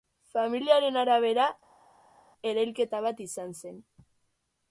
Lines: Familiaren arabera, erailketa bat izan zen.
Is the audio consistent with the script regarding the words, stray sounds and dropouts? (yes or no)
yes